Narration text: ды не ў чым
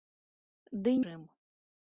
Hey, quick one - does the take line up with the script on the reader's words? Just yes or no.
no